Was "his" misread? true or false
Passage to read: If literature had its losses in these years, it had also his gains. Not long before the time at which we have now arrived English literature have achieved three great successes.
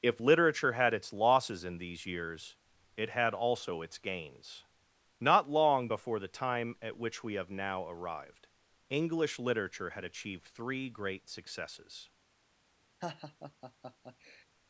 true